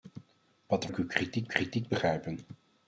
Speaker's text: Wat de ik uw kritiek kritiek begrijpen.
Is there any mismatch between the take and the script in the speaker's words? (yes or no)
no